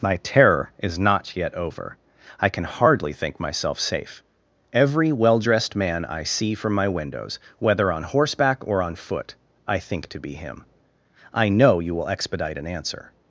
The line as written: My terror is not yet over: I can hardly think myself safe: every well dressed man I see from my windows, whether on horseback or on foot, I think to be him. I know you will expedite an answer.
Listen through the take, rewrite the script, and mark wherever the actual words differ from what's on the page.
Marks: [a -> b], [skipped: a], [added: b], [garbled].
My terror is not yet over: I can hardly think myself safe: every well dressed man I see from my windows, whether on horseback or on foot, I think to be him. I know you will expedite an answer.